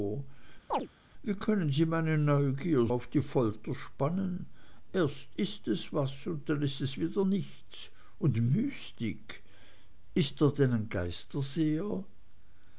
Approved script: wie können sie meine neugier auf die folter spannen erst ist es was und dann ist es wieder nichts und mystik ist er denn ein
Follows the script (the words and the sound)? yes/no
no